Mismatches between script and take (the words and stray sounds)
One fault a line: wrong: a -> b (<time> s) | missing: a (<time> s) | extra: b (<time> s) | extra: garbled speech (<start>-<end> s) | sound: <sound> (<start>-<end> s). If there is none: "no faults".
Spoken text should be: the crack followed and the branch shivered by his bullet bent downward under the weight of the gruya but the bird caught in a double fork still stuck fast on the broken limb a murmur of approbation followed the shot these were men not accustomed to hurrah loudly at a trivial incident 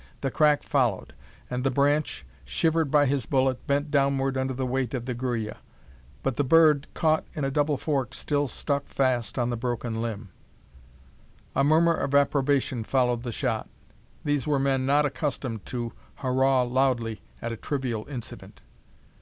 no faults